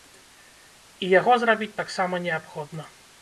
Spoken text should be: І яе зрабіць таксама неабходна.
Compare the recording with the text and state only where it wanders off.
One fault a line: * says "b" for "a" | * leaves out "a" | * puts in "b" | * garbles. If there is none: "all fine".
* says "яго" for "яе"